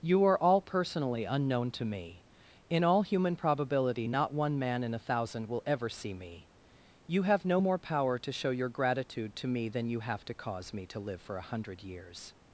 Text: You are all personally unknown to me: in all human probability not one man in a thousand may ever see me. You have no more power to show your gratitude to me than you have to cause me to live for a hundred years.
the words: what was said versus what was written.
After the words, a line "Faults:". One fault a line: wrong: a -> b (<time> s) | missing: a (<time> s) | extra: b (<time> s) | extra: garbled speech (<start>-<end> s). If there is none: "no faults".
You are all personally unknown to me: in all human probability not one man in a thousand will ever see me. You have no more power to show your gratitude to me than you have to cause me to live for a hundred years.
Faults:
wrong: may -> will (5.5 s)